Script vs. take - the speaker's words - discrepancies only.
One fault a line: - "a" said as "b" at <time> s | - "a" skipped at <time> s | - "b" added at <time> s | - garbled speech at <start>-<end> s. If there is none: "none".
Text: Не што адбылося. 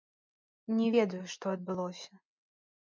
- "ведаю" added at 0.9 s